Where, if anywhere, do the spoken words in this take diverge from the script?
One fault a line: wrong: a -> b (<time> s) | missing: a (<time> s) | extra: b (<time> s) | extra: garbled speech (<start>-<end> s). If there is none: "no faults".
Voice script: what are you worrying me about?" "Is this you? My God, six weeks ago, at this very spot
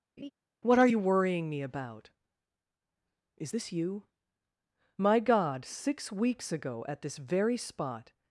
no faults